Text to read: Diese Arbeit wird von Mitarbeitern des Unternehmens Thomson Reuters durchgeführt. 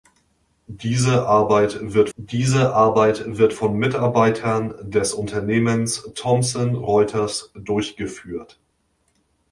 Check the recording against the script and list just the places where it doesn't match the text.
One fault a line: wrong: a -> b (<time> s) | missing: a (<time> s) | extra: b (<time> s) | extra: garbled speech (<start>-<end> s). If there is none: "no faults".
extra: diese Arbeit wird (2.1 s)